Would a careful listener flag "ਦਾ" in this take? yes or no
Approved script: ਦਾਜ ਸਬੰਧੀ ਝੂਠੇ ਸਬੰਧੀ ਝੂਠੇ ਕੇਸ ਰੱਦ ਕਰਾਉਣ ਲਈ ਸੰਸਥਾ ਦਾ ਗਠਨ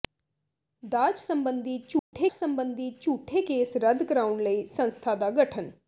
no